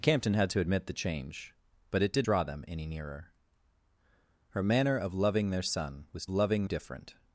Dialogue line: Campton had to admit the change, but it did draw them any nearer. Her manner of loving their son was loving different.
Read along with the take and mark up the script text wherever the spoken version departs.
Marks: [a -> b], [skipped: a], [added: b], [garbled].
Campton had to admit the change, but it did draw them any nearer. Her manner of loving their son was loving different.